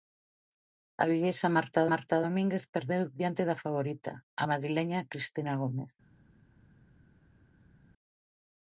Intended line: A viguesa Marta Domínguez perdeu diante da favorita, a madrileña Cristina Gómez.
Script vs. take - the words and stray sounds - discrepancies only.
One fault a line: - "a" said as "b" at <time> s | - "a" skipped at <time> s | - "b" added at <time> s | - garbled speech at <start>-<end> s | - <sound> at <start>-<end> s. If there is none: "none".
- "Marta" added at 1.9 s